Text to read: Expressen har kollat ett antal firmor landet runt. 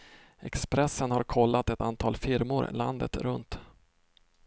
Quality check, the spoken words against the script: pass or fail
pass